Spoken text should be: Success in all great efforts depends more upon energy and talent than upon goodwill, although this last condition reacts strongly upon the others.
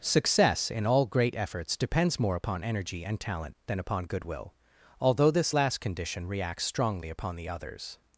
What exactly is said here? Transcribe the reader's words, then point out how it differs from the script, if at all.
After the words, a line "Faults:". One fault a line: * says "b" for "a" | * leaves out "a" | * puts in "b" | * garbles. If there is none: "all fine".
Success in all great efforts depends more upon energy and talent than upon goodwill, although this last condition reacts strongly upon the others.
Faults:
all fine